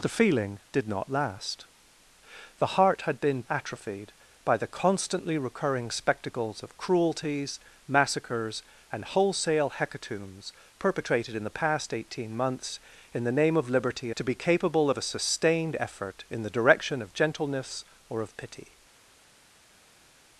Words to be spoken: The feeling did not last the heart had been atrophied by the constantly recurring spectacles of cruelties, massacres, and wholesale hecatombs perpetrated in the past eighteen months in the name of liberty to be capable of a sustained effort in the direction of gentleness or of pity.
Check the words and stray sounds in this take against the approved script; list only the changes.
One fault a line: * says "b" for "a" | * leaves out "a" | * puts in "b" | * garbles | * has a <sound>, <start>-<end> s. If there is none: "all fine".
all fine